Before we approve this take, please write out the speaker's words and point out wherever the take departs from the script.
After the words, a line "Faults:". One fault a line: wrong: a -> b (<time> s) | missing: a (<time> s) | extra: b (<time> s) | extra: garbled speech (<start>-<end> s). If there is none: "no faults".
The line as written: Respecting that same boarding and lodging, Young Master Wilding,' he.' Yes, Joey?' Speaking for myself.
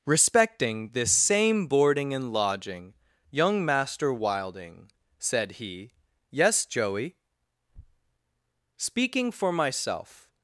Respecting this same boarding and lodging, Young Master Wilding,' said he.' Yes, Joey?' Speaking for myself.
Faults:
wrong: that -> this (0.9 s)
extra: said (5.2 s)